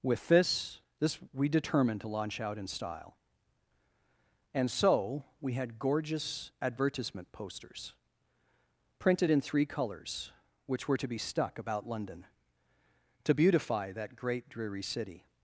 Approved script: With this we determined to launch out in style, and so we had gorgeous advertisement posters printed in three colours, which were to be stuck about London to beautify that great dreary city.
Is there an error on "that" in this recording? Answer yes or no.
no